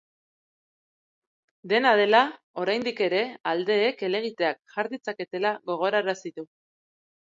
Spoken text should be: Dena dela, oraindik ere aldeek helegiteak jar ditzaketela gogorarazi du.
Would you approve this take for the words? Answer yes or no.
yes